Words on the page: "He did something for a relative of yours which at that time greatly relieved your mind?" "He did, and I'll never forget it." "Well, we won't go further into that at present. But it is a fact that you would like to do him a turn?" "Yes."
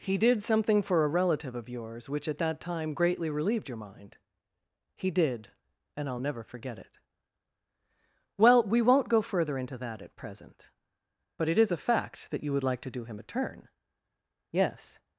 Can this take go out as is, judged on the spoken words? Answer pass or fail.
pass